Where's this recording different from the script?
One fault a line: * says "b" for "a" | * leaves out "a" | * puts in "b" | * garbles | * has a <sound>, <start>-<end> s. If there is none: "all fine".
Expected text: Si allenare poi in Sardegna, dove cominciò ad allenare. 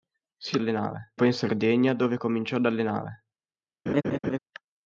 * has a laugh, 3.9-4.4 s